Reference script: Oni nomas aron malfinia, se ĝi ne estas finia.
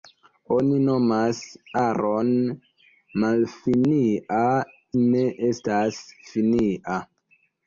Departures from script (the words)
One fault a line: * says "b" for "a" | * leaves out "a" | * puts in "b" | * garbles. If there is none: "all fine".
* leaves out "se ĝi"